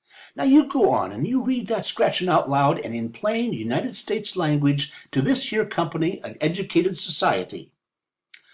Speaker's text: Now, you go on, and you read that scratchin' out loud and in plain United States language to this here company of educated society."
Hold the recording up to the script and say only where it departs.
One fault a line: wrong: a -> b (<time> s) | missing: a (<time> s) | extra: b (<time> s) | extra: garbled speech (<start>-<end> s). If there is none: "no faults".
no faults